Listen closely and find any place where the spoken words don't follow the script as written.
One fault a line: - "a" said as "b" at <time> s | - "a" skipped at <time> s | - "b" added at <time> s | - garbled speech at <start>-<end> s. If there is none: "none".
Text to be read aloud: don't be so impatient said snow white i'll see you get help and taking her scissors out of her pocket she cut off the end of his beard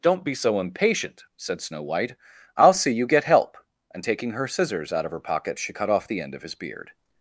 none